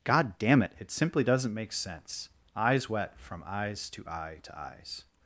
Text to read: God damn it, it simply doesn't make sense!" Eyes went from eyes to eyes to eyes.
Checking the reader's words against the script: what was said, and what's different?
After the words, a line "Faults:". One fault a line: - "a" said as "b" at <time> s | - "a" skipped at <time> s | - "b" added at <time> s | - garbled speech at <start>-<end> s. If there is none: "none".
God damn it, it simply doesn't make sense!" Eyes wet from eyes to eye to eyes.
Faults:
- "went" said as "wet" at 2.9 s
- "eyes" said as "eye" at 4.1 s